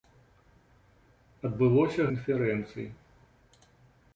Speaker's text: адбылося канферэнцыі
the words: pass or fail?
pass